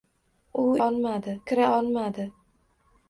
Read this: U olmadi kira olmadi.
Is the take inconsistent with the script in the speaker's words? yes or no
no